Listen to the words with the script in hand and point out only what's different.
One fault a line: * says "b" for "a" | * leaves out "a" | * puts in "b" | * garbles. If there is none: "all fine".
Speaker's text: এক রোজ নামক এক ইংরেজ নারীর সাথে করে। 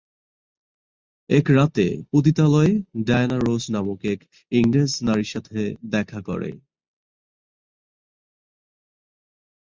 * puts in "রাতে পতিতালয়ে ডায়ানা"
* puts in "দেখা"